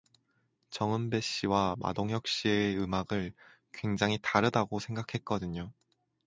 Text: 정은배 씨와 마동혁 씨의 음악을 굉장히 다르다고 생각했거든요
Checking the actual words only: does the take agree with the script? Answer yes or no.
yes